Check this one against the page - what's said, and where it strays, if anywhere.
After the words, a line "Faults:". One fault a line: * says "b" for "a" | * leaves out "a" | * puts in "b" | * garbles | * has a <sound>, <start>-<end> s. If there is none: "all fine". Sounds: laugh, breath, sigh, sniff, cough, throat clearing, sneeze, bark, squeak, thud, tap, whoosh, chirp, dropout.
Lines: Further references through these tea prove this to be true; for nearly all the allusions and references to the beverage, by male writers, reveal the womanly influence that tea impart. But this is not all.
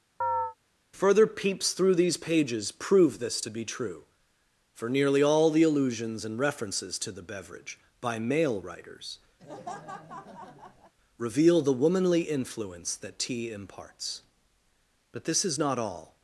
Further peeps through these pages prove this to be true; for nearly all the allusions and references to the beverage, by male writers, reveal the womanly influence that tea imparts. But this is not all.
Faults:
* has a chirp, 0.2-0.6 s
* says "peeps" for "references"
* says "pages" for "tea"
* has a laugh, 9.4-10.9 s
* says "imparts" for "impart"